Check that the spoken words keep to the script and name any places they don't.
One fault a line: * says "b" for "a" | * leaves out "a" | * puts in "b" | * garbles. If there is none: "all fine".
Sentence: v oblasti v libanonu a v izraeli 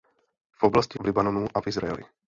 all fine